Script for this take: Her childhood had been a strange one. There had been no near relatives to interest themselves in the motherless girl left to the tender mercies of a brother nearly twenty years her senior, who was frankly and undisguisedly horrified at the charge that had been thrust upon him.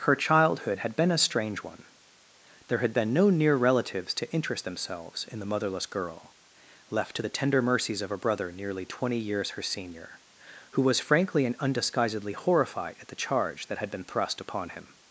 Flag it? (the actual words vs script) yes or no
no